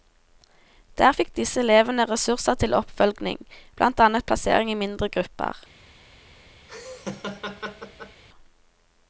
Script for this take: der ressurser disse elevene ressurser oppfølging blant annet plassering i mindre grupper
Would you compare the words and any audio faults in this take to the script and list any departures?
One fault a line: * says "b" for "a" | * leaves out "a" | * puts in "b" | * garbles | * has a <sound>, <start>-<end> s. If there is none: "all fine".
* says "fikk" for "ressurser"
* puts in "til"
* has a laugh, 6.7-8.2 s